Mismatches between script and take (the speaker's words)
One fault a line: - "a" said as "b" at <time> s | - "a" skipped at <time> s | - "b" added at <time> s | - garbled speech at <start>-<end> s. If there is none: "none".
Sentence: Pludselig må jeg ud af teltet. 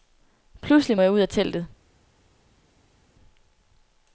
none